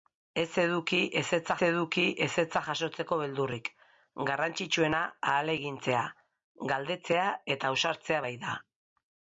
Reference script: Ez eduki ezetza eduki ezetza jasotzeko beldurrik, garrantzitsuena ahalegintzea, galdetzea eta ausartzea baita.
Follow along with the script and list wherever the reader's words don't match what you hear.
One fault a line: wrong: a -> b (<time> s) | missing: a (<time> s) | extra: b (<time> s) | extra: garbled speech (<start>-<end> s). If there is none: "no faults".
no faults